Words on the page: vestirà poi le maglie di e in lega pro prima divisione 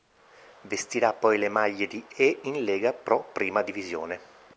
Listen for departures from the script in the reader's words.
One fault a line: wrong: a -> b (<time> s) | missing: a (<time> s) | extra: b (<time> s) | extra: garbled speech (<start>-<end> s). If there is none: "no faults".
no faults